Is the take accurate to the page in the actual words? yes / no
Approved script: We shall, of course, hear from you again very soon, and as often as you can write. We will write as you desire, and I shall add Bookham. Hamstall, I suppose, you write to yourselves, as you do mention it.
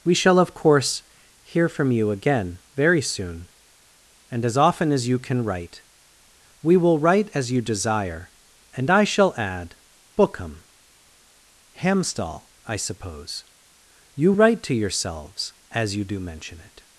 yes